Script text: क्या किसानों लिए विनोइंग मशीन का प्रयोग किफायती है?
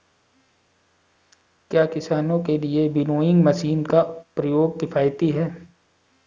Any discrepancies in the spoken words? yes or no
yes